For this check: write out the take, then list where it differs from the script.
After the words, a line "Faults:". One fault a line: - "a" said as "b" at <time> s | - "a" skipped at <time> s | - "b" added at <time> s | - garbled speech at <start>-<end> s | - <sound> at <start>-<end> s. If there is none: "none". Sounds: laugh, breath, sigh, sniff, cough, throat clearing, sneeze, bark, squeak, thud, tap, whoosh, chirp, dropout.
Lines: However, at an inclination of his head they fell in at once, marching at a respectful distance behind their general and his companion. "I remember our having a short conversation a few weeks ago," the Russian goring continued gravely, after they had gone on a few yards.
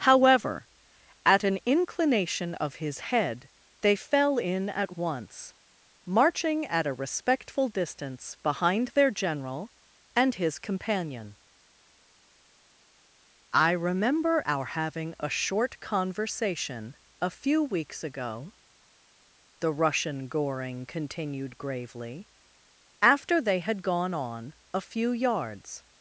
However, at an inclination of his head they fell in at once, marching at a respectful distance behind their general and his companion. "I remember our having a short conversation a few weeks ago," the Russian goring continued gravely, after they had gone on a few yards.
Faults:
none